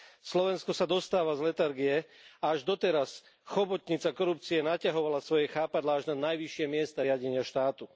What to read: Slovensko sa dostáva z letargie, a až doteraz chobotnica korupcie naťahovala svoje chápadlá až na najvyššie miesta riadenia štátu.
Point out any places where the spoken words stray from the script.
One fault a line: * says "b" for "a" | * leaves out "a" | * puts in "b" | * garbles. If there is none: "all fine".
all fine